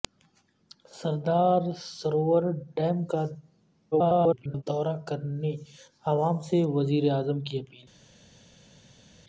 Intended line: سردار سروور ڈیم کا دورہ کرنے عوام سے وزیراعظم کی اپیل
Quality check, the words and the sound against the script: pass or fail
fail